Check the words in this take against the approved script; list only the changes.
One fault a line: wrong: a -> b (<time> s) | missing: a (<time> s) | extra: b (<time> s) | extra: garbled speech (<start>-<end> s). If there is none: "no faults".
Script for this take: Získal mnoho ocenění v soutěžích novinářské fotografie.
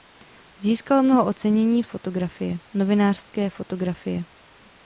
wrong: soutěžích -> fotografie (1.8 s)